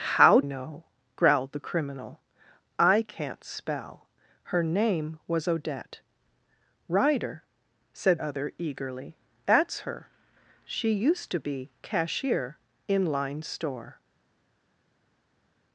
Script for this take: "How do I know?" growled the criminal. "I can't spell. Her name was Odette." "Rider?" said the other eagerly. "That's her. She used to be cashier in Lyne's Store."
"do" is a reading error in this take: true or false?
true